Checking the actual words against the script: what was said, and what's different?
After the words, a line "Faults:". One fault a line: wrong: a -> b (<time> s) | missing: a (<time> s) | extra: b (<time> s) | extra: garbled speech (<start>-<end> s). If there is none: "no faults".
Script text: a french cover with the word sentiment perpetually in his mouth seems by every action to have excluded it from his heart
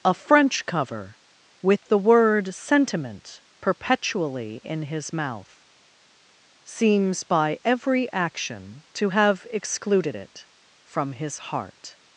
a french cover with the word sentiment perpetually in his mouth seems by every action to have excluded it from his heart
Faults:
no faults